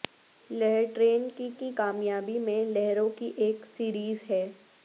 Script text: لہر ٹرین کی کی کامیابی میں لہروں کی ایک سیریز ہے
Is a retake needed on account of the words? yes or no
no